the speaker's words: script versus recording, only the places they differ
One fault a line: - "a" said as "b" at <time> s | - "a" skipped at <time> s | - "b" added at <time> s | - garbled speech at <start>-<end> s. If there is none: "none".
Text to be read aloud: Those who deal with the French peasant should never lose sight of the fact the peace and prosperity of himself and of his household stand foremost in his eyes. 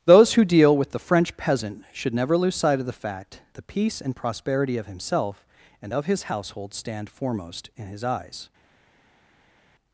none